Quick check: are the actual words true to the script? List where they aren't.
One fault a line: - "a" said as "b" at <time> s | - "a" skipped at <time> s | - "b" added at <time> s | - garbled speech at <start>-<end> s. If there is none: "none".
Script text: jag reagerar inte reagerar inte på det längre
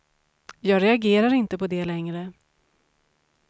- "reagerar inte" skipped at 1.6 s